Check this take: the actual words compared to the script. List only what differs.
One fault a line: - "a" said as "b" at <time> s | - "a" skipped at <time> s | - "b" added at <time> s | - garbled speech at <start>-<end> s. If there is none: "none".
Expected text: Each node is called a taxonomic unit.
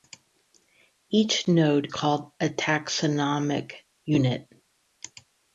- "is" skipped at 1.9 s